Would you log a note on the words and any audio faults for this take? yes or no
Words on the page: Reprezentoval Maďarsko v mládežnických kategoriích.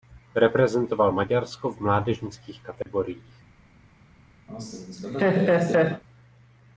yes